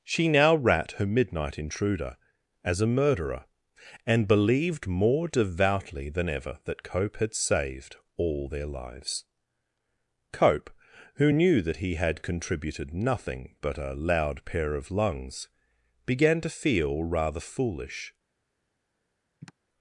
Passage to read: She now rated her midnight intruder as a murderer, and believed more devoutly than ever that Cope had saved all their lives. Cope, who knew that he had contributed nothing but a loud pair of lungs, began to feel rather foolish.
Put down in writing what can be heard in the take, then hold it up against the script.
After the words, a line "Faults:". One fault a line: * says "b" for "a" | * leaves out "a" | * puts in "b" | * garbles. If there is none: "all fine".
She now rat her midnight intruder as a murderer, and believed more devoutly than ever that Cope had saved all their lives. Cope, who knew that he had contributed nothing but a loud pair of lungs, began to feel rather foolish.
Faults:
* says "rat" for "rated"